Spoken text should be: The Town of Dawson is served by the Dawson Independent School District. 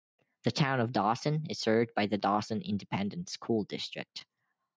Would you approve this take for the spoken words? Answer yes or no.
yes